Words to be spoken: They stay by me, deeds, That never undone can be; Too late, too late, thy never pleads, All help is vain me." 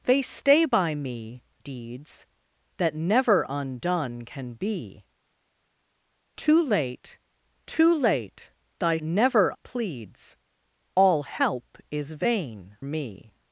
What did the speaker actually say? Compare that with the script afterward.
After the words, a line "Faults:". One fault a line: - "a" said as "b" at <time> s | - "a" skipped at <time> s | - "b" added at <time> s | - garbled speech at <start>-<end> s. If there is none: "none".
They stay by me, deeds, That never undone can be; Too late, too late, thy never pleads, All help is vain me."
Faults:
none